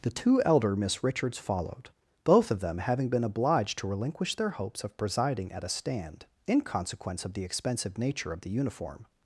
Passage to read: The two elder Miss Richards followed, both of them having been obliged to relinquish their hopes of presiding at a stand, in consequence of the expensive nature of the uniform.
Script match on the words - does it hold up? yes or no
yes